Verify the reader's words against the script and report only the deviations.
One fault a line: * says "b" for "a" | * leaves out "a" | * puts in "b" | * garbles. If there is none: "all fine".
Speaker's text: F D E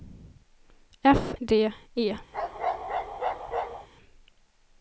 all fine